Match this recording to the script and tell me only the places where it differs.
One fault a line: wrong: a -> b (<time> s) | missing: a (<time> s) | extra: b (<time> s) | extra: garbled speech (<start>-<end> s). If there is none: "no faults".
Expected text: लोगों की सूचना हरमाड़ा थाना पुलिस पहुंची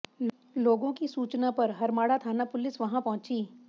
extra: पर (1.5 s)
extra: वहां (2.8 s)